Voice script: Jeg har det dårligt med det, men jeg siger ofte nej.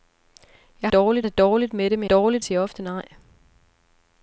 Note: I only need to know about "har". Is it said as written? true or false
false